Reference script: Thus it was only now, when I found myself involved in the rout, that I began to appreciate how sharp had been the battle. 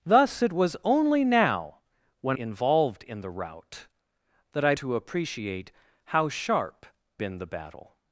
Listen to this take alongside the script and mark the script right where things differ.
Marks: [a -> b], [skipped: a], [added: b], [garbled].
Thus it was only now, when [skipped: I found myself] involved in the rout, that I [skipped: began] to appreciate how sharp [skipped: had] been the battle.